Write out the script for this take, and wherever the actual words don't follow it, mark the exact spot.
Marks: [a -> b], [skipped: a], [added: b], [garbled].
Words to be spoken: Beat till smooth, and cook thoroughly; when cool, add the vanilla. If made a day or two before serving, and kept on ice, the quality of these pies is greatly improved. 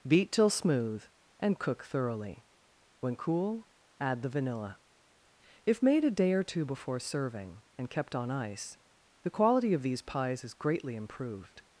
Beat till smooth, and cook thoroughly; when cool, add the vanilla. If made a day or two before serving, and kept on ice, the quality of these pies is greatly improved.